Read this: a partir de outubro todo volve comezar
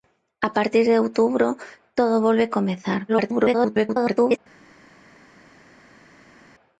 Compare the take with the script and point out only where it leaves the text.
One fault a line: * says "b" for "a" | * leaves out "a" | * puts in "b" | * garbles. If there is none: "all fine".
* garbles